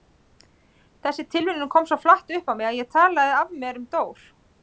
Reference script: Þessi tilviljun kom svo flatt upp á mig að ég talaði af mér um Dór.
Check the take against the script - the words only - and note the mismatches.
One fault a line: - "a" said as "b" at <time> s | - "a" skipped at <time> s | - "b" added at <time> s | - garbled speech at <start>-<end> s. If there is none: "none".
none